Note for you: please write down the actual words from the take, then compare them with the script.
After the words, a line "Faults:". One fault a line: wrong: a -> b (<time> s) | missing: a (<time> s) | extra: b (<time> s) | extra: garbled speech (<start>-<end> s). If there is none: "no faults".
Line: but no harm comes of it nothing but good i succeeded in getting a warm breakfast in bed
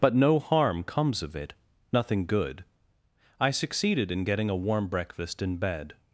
but no harm comes of it nothing good i succeeded in getting a warm breakfast in bed
Faults:
missing: but (2.2 s)